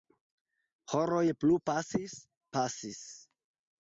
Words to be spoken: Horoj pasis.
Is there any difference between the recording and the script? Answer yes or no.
yes